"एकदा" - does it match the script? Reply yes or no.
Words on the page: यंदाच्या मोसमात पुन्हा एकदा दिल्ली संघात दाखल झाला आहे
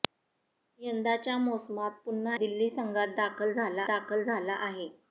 no